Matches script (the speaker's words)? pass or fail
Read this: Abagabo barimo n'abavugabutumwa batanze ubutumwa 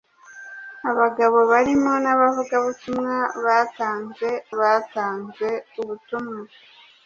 fail